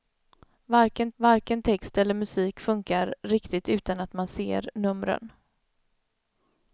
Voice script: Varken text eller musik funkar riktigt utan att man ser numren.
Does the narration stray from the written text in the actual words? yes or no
yes